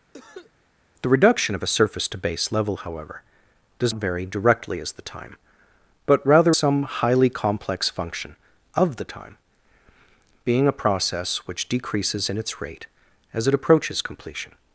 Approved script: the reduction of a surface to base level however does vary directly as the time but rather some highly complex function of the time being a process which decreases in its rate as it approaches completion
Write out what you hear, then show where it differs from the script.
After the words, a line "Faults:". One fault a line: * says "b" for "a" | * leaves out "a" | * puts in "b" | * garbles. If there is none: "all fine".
the reduction of a surface to base level however does vary directly as the time but rather some highly complex function of the time being a process which decreases in its rate as it approaches completion
Faults:
all fine